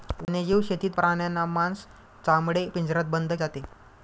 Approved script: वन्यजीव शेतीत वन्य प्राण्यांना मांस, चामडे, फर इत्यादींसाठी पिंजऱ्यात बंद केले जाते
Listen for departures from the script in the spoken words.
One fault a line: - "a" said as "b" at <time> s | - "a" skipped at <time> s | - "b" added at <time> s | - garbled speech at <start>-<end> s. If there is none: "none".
- "वन्य" skipped at 0.9 s
- "फर इत्यादींसाठी" skipped at 2.7 s
- "केले" skipped at 3.3 s